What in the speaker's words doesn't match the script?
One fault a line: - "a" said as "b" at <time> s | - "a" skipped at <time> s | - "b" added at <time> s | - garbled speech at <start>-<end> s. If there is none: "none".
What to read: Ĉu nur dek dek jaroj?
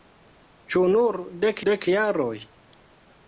none